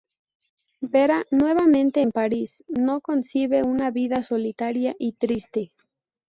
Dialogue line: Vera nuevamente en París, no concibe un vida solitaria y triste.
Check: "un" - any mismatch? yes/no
yes